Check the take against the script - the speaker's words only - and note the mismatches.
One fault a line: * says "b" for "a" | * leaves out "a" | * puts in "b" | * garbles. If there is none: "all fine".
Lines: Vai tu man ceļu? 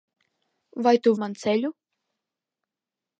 all fine